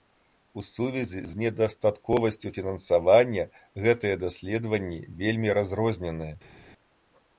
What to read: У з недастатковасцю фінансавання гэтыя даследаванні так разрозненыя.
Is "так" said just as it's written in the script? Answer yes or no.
no